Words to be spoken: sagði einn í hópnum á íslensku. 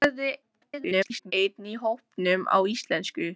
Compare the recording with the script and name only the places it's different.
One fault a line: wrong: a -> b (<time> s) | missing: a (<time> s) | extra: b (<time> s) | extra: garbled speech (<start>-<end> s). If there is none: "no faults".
extra: garbled speech (0.4-1.3 s)